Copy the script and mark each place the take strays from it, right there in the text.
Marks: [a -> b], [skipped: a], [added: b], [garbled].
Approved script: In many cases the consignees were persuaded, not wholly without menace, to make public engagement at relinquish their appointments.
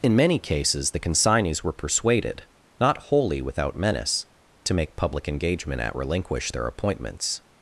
In many cases the consignees were persuaded, not wholly without menace, to make public engagement at relinquish their appointments.